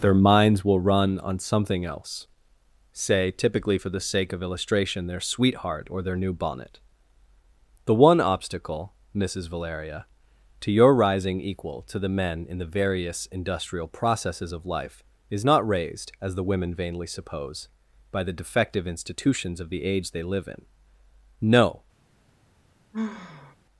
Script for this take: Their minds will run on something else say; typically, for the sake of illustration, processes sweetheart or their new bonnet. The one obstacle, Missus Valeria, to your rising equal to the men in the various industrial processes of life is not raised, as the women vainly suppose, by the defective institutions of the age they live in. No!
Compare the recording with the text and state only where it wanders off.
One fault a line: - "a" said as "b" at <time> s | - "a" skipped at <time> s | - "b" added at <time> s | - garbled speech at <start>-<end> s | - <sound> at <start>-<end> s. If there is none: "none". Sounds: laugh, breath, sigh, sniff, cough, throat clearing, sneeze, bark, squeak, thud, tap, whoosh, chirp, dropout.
- "processes" said as "their" at 5.1 s
- sigh at 22.9-23.6 s